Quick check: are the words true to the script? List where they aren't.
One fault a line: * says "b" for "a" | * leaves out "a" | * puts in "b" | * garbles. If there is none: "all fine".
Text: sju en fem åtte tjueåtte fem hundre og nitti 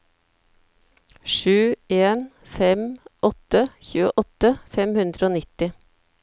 all fine